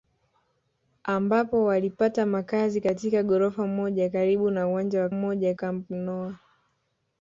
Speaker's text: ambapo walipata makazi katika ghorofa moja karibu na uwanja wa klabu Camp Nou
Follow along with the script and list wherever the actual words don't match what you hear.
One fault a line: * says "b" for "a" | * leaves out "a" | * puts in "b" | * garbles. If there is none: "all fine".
* says "moja" for "klabu"